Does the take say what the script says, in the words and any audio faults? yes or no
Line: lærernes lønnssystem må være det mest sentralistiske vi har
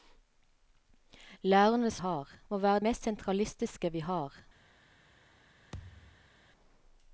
no